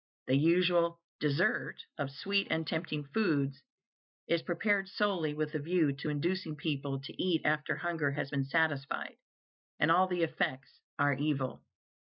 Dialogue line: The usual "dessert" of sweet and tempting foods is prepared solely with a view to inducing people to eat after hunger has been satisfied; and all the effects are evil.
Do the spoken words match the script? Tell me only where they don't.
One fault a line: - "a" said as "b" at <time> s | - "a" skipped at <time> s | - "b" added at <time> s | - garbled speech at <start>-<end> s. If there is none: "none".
none